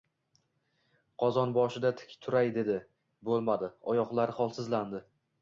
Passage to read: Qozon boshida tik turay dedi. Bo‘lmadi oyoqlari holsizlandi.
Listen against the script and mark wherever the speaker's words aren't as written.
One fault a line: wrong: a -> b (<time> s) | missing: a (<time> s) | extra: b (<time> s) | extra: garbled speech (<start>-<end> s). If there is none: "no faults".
no faults